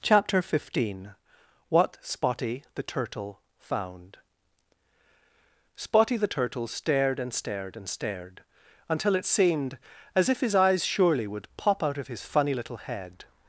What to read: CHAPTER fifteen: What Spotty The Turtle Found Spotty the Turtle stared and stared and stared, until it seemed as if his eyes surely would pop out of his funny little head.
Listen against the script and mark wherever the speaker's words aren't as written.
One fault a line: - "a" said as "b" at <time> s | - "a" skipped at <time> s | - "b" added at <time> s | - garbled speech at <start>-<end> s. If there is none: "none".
none